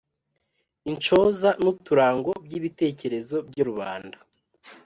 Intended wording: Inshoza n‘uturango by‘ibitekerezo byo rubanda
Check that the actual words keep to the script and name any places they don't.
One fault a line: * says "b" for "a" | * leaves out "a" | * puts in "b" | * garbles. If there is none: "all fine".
all fine